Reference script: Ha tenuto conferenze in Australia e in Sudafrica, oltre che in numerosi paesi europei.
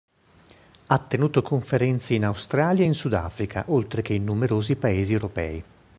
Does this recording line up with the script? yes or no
yes